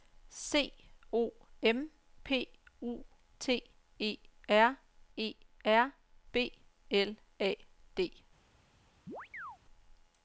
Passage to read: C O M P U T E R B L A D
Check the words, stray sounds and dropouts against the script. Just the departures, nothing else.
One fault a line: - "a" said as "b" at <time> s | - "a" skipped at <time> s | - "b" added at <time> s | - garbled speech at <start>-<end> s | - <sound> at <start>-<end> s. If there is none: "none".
- "E R" added at 5.2 s
- chirp at 9.1-9.6 s